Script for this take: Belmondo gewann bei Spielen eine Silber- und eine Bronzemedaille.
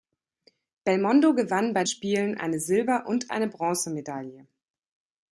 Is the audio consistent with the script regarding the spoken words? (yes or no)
yes